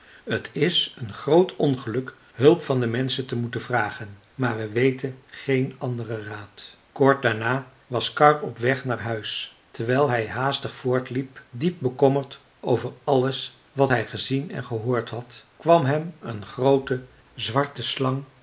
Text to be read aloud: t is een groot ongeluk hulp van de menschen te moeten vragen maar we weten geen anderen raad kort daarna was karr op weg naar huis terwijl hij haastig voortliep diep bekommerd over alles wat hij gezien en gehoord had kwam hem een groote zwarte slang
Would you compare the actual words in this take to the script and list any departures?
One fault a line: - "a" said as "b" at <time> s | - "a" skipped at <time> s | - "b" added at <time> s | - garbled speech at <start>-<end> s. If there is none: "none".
none